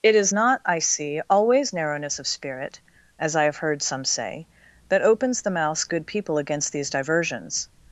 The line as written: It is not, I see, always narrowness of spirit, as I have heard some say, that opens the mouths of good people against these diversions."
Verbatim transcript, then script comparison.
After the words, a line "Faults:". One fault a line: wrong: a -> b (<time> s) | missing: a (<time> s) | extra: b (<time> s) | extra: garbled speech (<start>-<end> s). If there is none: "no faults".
It is not, I see, always narrowness of spirit, as I have heard some say, that opens the mouths good people against these diversions."
Faults:
missing: of (5.8 s)